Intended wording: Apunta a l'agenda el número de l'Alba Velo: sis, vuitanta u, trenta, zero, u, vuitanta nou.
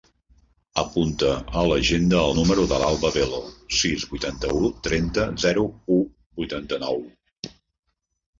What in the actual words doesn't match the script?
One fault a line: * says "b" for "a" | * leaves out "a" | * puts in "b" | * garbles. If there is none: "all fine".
all fine